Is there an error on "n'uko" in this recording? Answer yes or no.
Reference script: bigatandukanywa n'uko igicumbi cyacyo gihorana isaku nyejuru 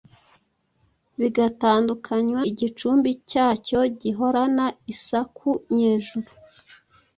yes